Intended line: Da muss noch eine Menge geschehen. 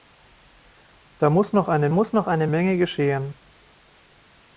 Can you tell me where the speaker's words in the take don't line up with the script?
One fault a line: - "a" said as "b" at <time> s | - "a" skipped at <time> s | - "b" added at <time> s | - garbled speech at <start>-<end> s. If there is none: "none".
- "muss noch eine" added at 1.9 s